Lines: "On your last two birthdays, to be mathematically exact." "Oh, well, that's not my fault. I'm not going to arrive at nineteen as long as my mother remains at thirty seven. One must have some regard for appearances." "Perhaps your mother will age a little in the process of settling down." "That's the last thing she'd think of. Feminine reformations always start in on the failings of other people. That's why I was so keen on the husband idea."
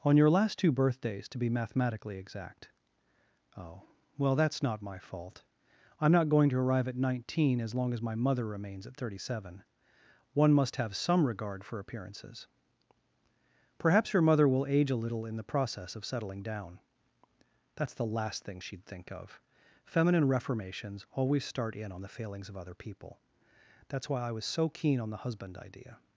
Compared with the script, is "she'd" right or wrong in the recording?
right